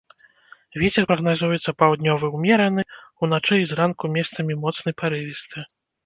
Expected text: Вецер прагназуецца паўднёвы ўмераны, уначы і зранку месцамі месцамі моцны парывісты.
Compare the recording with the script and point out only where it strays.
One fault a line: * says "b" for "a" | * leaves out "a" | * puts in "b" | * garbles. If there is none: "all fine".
* leaves out "месцамі"